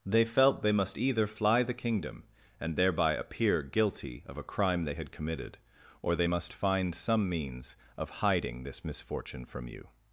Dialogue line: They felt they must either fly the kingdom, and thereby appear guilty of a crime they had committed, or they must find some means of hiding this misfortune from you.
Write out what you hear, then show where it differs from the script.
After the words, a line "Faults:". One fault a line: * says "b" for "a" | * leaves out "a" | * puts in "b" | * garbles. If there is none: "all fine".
They felt they must either fly the kingdom, and thereby appear guilty of a crime they had committed, or they must find some means of hiding this misfortune from you.
Faults:
all fine